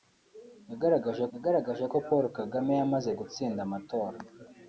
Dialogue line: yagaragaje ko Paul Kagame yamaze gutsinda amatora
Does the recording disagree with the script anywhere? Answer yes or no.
yes